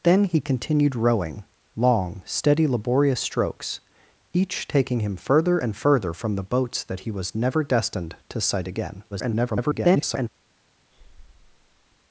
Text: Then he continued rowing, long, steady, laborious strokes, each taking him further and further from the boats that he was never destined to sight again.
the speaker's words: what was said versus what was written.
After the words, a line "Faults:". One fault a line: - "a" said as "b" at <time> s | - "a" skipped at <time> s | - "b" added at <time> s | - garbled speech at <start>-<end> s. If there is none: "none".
Then he continued rowing, long, steady, laborious strokes, each taking him further and further from the boats that he was never destined to sight again. [garbled]
Faults:
- garbled speech at 9.1-10.3 s